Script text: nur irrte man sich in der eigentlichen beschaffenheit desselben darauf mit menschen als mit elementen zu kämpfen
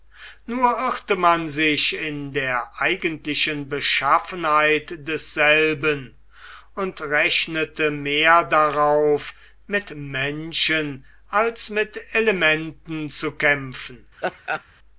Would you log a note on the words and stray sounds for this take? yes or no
yes